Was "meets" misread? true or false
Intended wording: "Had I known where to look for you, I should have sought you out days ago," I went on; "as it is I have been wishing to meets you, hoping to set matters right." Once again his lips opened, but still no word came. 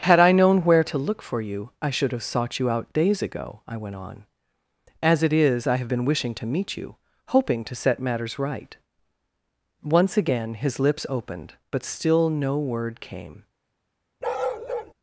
true